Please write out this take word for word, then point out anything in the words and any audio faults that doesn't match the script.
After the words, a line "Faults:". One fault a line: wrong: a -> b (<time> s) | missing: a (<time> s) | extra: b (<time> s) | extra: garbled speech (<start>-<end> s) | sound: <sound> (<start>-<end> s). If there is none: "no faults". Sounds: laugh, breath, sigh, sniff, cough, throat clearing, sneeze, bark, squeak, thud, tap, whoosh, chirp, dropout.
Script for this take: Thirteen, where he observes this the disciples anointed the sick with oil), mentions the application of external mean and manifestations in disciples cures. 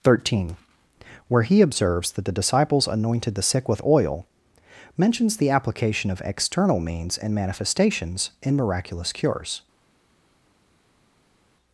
Thirteen, where he observes that the disciples anointed the sick with oil), mentions the application of external means and manifestations in miraculous cures.
Faults:
wrong: this -> that (2.1 s)
wrong: mean -> means (6.8 s)
wrong: disciples -> miraculous (8.6 s)